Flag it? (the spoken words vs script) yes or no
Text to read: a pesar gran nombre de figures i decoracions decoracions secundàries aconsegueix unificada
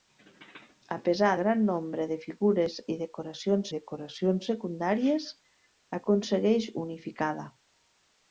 no